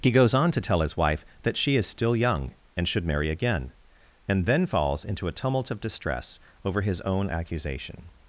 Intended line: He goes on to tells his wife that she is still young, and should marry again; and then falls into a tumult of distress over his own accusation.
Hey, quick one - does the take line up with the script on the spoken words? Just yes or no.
no